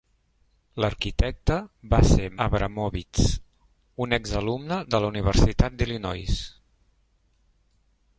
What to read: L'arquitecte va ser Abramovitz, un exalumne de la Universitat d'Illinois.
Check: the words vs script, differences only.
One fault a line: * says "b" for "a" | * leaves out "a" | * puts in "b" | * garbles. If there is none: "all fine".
all fine